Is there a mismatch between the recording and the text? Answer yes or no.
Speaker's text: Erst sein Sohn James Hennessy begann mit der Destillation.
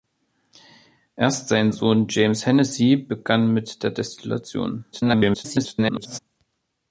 yes